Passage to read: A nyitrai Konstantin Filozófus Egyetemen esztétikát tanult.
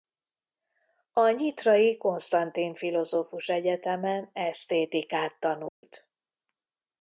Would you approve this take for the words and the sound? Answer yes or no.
no